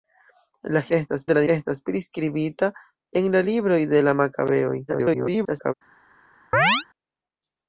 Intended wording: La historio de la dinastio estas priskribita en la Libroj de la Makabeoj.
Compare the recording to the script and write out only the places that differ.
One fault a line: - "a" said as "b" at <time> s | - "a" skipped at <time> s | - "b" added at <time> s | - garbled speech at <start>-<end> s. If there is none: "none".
- "historio" said as "estas" at 1.0 s
- "dinastio" skipped at 1.4 s
- garbled speech at 4.9-5.7 s